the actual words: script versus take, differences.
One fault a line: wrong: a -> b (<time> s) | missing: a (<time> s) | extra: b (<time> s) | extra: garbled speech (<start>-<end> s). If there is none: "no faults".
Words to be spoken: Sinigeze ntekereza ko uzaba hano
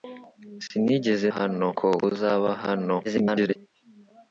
wrong: ntekereza -> hano (1.4 s)
extra: garbled speech (3.0-3.6 s)